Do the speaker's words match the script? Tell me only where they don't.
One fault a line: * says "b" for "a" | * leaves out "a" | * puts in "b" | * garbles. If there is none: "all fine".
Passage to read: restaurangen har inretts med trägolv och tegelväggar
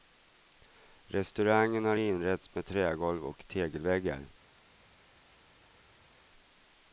all fine